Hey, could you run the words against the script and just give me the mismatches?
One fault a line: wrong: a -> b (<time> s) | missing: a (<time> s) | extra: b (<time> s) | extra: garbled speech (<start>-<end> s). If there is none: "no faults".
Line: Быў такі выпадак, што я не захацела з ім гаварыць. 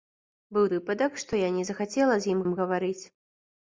missing: такі (0.6 s)
extra: ім (2.5 s)